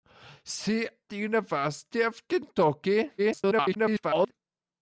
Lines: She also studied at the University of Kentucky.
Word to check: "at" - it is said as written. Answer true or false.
false